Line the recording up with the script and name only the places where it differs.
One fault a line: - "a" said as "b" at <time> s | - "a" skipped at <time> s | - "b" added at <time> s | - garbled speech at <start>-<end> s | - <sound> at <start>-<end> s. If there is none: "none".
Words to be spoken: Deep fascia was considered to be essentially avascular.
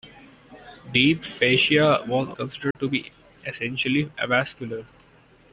- dropout at 2.7-2.8 s